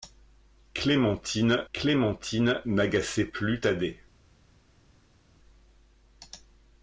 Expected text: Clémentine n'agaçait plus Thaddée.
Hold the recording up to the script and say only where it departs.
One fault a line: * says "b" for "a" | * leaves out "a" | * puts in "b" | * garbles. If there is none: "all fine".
* puts in "clémentine"